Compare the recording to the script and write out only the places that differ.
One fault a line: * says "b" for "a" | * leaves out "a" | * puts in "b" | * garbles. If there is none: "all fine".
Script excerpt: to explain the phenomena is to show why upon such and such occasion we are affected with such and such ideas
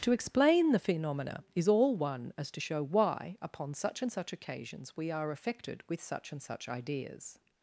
* puts in "all one as"
* says "occasions" for "occasion"